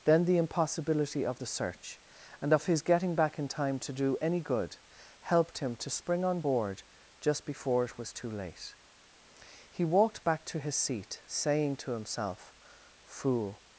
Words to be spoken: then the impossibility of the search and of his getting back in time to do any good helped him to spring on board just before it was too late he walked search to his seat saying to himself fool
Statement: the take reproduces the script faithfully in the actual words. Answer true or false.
false